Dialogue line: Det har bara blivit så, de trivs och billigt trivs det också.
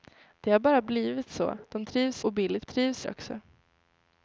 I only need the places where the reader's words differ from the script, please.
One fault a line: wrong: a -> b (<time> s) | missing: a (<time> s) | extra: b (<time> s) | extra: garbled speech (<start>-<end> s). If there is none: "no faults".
no faults